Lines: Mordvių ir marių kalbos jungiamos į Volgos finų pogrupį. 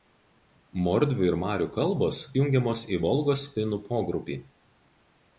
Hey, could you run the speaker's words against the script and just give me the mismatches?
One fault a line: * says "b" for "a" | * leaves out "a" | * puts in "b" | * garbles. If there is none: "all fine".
all fine